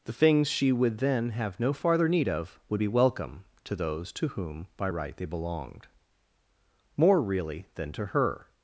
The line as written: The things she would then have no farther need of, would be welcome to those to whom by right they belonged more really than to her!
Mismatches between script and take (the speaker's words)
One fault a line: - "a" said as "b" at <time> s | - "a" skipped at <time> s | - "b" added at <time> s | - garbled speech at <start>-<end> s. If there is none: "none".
none